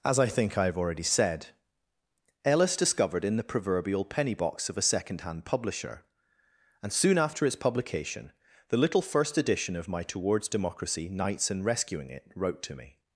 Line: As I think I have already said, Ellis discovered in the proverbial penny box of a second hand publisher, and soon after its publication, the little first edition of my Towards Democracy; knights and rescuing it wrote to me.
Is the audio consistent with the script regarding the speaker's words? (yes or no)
yes